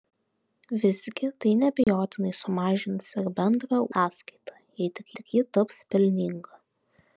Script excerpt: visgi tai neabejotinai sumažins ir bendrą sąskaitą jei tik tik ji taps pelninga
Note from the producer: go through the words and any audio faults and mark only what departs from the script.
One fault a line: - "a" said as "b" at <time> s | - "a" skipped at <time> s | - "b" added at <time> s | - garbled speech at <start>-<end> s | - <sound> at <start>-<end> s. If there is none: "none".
- dropout at 1.8-1.9 s